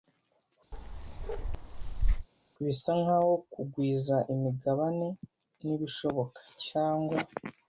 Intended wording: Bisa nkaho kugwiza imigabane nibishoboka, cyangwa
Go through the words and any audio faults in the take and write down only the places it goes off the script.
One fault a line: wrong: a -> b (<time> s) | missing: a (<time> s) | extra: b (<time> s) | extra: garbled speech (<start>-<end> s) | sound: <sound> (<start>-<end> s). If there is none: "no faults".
sound: bark (0.7-2.3 s)